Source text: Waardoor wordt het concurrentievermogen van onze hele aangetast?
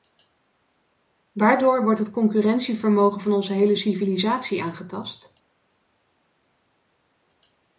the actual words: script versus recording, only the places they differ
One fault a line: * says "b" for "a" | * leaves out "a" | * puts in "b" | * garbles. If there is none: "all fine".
* puts in "civilisatie"